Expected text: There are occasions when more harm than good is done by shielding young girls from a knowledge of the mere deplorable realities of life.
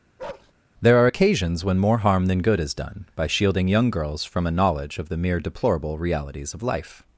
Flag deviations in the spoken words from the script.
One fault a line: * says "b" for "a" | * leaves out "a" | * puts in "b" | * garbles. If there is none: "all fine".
all fine